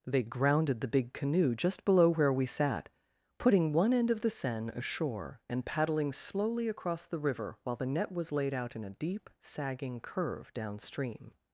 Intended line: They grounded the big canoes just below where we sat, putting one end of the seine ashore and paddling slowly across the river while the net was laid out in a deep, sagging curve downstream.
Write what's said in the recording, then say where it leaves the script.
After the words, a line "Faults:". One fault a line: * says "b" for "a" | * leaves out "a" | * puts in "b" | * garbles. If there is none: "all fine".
They grounded the big canoe just below where we sat, putting one end of the seine ashore and paddling slowly across the river while the net was laid out in a deep, sagging curve downstream.
Faults:
* says "canoe" for "canoes"